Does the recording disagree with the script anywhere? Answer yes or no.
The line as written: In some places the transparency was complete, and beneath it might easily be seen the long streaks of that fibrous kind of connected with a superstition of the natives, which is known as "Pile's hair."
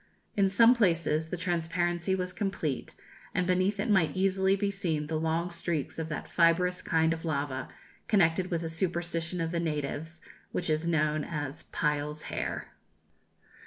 yes